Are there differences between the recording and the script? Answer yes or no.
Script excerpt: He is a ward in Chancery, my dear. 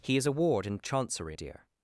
yes